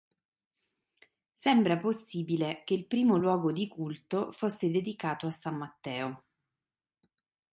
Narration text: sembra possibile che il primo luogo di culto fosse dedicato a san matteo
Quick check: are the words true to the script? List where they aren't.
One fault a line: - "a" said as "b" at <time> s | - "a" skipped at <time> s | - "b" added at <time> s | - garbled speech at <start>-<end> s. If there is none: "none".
none